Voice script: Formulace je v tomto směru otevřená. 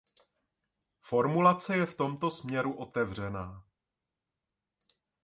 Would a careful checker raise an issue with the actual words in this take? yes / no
no